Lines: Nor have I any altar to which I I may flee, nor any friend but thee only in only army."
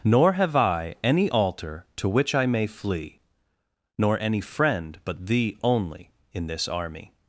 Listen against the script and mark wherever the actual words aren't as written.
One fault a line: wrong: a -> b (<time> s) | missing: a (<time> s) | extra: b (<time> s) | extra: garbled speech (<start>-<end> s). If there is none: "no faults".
missing: I (2.5 s)
wrong: only -> this (6.5 s)